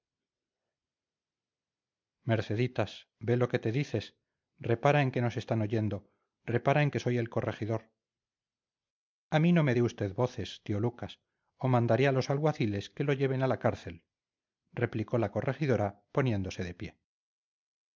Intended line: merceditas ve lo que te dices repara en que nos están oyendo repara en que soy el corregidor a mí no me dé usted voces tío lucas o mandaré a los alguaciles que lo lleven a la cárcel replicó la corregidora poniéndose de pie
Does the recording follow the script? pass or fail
pass